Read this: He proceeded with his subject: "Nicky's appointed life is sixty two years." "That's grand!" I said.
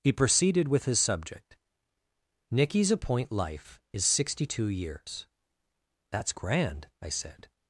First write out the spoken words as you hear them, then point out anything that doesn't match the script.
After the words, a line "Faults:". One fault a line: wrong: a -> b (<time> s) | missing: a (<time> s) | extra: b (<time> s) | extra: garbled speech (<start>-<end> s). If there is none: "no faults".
He proceeded with his subject: "Nicky's appoint life is sixty two years." "That's grand!" I said.
Faults:
wrong: appointed -> appoint (2.9 s)